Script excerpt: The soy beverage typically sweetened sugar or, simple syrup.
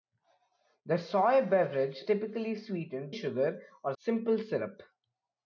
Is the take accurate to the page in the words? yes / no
yes